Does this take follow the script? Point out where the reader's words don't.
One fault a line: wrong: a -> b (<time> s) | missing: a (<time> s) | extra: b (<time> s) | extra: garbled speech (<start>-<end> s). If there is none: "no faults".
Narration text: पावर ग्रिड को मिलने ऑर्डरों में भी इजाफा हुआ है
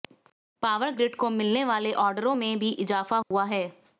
extra: वाले (1.6 s)